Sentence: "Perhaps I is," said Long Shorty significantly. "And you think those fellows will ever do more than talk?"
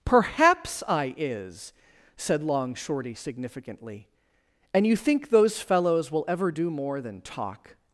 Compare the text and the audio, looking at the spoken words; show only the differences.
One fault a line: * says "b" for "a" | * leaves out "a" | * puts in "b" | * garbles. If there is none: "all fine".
all fine